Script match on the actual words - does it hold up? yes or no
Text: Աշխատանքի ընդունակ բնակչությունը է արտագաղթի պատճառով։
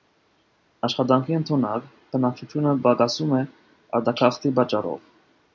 no